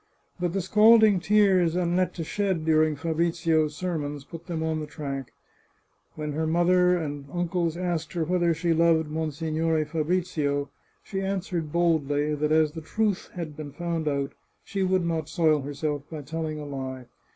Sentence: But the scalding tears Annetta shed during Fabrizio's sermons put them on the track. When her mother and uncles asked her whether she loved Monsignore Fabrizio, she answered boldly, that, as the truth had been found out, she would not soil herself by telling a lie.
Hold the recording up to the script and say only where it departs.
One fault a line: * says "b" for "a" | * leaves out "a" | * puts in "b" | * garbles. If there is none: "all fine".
all fine